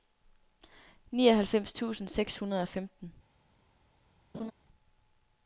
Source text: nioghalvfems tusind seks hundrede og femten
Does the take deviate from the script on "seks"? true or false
false